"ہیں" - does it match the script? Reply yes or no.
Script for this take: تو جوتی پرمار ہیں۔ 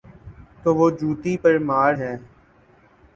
yes